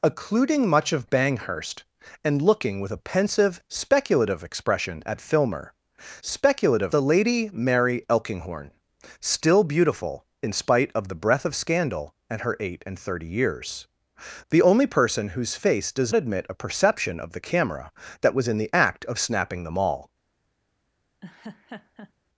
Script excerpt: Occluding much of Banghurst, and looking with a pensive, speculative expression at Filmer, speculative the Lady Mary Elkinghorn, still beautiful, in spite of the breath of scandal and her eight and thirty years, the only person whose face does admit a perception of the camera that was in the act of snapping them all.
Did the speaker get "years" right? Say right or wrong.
right